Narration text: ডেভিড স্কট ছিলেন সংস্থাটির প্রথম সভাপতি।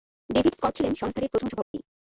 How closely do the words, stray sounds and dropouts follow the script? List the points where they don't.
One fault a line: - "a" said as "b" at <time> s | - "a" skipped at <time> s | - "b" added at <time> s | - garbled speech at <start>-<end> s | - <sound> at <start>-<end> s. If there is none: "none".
- dropout at 1.6-1.7 s